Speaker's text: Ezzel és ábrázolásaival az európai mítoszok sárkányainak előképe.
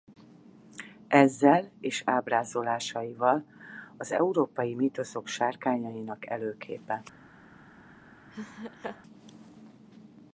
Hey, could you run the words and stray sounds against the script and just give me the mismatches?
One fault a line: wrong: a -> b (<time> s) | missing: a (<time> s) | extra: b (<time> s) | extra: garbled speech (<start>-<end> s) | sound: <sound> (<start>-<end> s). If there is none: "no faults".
sound: laugh (8.3-9.0 s)